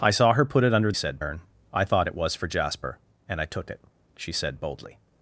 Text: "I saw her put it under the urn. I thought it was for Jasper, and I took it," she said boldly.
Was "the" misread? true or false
true